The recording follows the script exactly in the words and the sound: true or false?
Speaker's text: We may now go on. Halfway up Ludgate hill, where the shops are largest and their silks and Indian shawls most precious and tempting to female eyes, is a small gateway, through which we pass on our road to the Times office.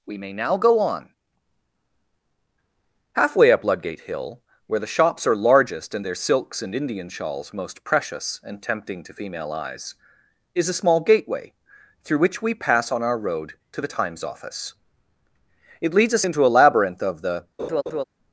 false